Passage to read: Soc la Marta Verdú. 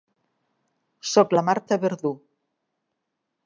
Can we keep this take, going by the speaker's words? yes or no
yes